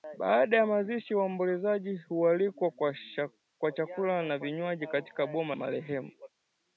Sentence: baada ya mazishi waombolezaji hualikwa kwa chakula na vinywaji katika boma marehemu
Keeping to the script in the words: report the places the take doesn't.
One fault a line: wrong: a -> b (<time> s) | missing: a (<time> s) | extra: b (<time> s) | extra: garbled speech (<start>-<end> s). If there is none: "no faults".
no faults